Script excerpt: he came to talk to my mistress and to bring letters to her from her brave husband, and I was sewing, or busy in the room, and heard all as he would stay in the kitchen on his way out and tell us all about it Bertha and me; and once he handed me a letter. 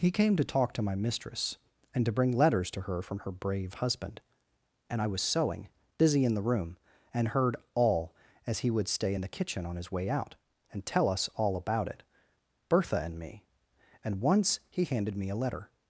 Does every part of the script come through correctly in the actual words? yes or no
no